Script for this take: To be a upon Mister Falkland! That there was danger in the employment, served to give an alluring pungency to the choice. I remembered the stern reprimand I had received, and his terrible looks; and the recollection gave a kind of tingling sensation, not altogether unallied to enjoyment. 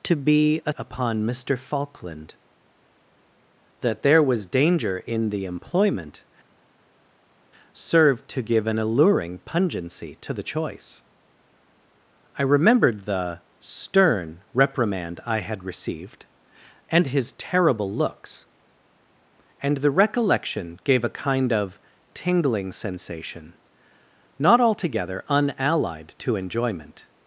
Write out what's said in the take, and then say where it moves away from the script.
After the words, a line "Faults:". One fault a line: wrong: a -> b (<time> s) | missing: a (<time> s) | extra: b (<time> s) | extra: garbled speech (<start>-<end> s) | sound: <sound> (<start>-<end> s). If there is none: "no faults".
To be a upon Mister Falkland! That there was danger in the employment, served to give an alluring pungency to the choice. I remembered the stern reprimand I had received, and his terrible looks; and the recollection gave a kind of tingling sensation, not altogether unallied to enjoyment.
Faults:
no faults